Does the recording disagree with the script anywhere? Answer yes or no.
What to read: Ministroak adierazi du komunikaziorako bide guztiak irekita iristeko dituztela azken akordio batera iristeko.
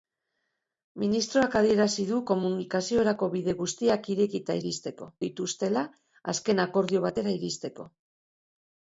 no